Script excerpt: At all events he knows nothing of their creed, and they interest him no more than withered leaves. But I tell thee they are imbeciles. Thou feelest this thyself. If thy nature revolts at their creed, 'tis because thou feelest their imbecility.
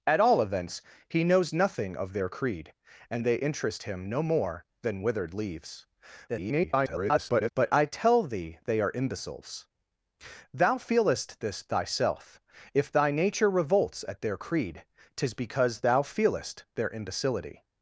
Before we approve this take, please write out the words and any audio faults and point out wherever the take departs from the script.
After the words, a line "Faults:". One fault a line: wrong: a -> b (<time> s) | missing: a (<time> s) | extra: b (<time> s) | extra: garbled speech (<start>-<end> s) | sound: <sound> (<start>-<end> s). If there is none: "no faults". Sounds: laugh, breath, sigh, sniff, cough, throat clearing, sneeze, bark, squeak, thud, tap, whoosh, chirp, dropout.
At all events he knows nothing of their creed, and they interest him no more than withered leaves. [garbled] But I tell thee they are imbeciles. Thou feelest this thyself. If thy nature revolts at their creed, 'tis because thou feelest their imbecility.
Faults:
extra: garbled speech (6.3-7.5 s)